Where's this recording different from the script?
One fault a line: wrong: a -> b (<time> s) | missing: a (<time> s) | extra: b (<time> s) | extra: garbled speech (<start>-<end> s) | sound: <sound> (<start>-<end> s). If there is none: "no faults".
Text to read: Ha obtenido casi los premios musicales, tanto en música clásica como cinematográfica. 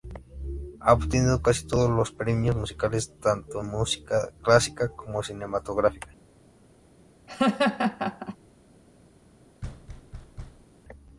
extra: todos (1.7 s)
sound: laugh (7.3-8.4 s)
sound: thud (9.6-10.7 s)